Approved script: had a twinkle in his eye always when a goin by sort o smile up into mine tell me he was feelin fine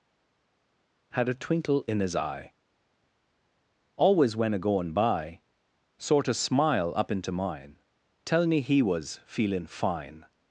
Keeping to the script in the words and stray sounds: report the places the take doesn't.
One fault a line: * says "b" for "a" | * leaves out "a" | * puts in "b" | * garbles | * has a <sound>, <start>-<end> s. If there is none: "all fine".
all fine